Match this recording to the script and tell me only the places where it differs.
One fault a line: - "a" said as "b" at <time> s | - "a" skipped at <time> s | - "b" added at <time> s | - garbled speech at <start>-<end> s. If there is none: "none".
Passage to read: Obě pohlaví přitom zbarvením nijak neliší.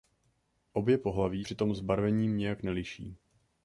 none